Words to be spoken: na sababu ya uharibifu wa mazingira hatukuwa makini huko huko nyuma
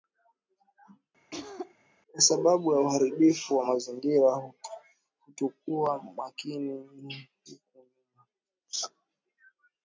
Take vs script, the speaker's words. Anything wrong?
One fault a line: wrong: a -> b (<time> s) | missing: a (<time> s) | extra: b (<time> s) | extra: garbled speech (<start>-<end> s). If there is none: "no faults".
wrong: na -> kwa (2.1 s)
missing: huko (7.9 s)